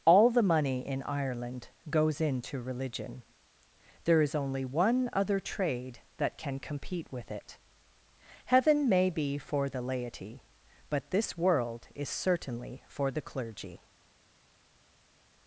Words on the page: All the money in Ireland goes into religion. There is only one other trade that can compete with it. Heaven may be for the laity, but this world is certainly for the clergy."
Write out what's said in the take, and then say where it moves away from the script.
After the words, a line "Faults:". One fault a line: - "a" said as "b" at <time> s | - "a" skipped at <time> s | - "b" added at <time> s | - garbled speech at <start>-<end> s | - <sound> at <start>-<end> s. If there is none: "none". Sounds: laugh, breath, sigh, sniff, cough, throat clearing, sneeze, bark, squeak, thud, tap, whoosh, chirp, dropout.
All the money in Ireland goes into religion. There is only one other trade that can compete with it. Heaven may be for the laity, but this world is certainly for the clergy."
Faults:
none